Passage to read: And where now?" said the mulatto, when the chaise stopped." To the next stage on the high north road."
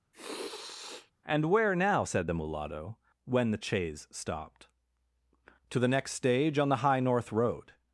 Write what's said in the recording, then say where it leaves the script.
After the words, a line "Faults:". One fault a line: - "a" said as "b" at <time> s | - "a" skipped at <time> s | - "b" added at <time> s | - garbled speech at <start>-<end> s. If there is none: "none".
And where now?" said the mulatto, when the chaise stopped." To the next stage on the high north road."
Faults:
none